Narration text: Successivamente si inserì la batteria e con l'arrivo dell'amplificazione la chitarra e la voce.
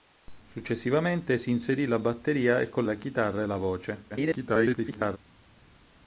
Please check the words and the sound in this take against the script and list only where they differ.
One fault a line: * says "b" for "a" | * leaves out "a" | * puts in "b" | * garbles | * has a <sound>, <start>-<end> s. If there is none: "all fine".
* leaves out "l'arrivo dell'amplificazione"
* garbles